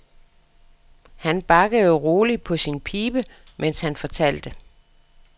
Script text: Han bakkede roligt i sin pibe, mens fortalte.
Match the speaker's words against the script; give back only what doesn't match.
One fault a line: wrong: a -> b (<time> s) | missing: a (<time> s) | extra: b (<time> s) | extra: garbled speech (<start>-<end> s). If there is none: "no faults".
wrong: i -> på (2.4 s)
extra: han (3.8 s)